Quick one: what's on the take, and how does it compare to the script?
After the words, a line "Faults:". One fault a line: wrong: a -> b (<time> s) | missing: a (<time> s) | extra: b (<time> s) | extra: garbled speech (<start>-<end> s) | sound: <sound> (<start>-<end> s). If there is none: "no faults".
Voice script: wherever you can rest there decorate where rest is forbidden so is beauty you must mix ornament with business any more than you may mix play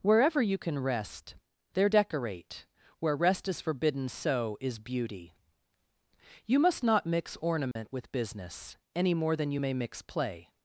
wherever you can rest there decorate where rest is forbidden so is beauty you must not mix ornament with business any more than you may mix play
Faults:
extra: not (6.8 s)
sound: dropout (7.7-7.8 s)